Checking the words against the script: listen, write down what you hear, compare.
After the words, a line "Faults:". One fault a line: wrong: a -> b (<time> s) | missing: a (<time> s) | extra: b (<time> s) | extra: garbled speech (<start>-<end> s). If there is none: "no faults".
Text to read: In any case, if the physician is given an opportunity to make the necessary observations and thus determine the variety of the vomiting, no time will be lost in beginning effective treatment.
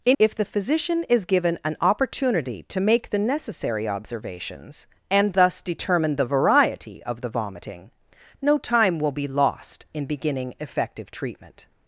In if the physician is given an opportunity to make the necessary observations and thus determine the variety of the vomiting, no time will be lost in beginning effective treatment.
Faults:
missing: any case (0.2 s)